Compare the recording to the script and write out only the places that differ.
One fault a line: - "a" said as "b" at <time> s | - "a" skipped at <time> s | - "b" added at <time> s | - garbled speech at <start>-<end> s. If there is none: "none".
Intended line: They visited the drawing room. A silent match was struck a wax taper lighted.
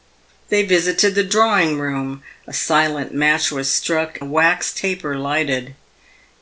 none